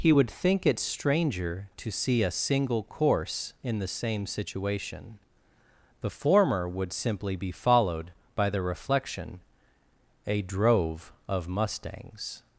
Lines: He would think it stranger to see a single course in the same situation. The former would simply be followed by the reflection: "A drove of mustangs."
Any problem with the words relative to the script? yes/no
no